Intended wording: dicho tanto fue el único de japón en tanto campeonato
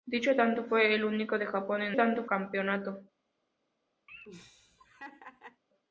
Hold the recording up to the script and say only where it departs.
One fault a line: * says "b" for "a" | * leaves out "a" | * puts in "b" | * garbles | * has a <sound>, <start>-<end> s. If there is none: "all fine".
* has a laugh, 4.1-5.6 s